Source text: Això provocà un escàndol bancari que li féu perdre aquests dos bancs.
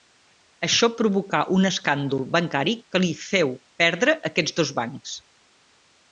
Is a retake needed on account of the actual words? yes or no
no